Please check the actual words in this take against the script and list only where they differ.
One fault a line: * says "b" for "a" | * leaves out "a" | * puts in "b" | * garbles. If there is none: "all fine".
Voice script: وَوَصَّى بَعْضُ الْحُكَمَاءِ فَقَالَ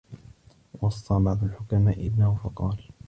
* puts in "ابْنَهُ"